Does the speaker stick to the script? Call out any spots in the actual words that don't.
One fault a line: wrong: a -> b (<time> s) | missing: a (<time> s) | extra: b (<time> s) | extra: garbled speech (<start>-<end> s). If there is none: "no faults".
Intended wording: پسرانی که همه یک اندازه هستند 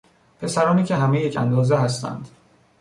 no faults